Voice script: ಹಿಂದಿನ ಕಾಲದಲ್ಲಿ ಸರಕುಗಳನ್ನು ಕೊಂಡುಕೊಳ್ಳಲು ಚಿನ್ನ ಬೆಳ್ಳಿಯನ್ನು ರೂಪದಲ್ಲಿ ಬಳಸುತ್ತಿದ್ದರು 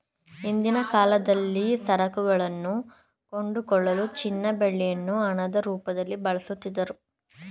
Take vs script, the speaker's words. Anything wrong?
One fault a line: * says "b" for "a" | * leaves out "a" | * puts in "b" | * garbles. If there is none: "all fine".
* puts in "ಹಣದ"